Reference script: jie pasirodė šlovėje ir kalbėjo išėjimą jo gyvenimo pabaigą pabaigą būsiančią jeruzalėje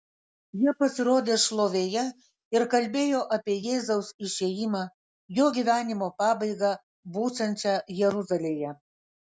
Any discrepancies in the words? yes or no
yes